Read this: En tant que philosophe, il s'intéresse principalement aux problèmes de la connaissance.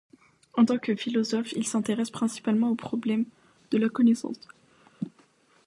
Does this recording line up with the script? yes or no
yes